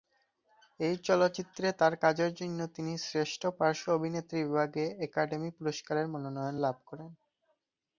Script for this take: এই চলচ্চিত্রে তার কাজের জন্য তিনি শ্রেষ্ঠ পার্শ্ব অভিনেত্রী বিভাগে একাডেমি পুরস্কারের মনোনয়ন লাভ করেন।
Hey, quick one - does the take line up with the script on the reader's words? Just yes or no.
yes